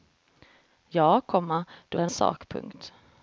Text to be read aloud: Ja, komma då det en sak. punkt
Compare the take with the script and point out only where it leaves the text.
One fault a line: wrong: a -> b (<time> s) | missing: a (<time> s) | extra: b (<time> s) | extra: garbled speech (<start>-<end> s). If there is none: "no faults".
no faults